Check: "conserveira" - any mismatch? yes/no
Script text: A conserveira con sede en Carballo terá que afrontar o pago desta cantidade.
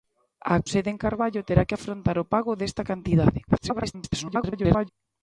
yes